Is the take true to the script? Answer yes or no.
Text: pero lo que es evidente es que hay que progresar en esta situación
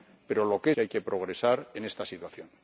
no